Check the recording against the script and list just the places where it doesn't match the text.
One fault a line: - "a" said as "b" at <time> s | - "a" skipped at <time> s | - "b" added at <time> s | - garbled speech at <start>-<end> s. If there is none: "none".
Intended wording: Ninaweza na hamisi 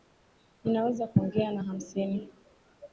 - "kuongea" added at 1.1 s